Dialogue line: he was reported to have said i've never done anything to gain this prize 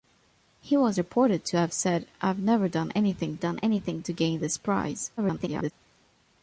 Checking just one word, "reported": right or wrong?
right